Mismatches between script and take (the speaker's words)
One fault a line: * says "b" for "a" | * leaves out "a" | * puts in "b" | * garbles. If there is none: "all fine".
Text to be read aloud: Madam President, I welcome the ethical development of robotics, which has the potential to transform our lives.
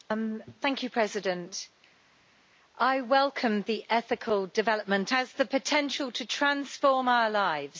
* leaves out "of robotics which"